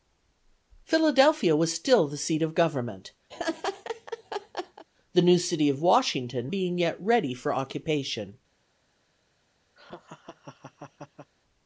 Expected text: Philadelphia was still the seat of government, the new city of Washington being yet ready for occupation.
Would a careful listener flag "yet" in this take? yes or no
no